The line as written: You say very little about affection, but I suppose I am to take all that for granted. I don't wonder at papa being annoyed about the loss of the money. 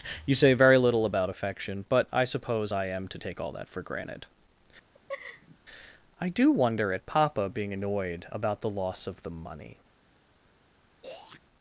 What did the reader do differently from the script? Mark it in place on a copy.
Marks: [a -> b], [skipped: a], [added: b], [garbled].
You say very little about affection, but I suppose I am to take all that for granted. I [don't -> do] wonder at papa being annoyed about the loss of the money.